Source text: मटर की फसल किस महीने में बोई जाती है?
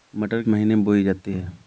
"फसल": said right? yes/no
no